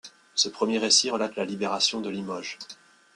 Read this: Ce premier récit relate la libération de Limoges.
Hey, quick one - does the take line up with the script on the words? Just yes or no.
yes